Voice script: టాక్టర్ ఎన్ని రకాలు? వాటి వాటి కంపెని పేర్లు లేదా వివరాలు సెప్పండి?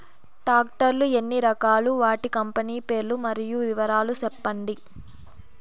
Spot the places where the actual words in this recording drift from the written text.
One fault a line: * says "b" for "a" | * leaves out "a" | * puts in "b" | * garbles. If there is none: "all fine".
* puts in "లు"
* leaves out "వాటి"
* says "మరియు" for "లేదా"